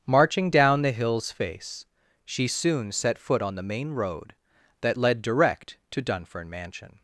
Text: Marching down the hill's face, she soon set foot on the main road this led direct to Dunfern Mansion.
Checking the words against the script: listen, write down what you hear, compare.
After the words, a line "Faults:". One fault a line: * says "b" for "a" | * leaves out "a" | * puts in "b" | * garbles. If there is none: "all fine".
Marching down the hill's face, she soon set foot on the main road that led direct to Dunfern Mansion.
Faults:
* says "that" for "this"